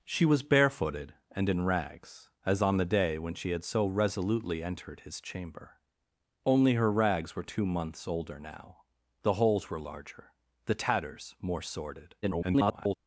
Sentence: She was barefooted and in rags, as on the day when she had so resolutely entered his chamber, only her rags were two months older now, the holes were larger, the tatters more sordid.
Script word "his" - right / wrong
right